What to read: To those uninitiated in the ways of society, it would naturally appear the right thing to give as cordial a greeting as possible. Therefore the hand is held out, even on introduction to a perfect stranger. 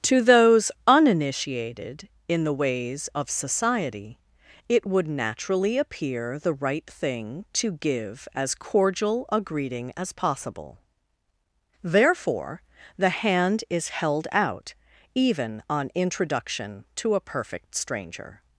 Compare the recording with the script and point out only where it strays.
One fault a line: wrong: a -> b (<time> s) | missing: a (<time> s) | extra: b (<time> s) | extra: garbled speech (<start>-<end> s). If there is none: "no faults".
no faults